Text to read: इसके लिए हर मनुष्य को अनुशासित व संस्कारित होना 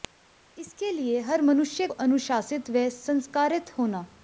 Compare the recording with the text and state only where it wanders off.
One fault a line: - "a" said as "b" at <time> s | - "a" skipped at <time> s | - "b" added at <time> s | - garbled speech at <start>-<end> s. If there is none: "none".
- "को" skipped at 1.9 s